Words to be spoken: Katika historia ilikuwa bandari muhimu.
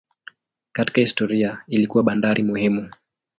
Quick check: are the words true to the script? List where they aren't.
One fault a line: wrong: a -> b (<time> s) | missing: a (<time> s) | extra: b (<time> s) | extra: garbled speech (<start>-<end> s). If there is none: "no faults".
no faults